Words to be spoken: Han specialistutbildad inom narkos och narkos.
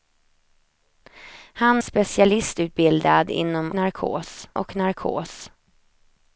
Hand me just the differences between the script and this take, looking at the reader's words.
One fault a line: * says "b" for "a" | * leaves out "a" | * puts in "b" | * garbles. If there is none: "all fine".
all fine